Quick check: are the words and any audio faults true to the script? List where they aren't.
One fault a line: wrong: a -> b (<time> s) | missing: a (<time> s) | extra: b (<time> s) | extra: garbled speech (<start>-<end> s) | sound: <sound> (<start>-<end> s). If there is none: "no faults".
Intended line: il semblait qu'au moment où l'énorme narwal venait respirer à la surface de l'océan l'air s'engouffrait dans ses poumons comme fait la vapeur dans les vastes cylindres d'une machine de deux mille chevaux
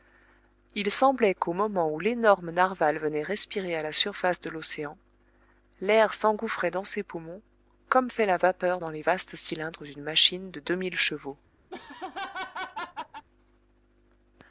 sound: laugh (11.7-13.2 s)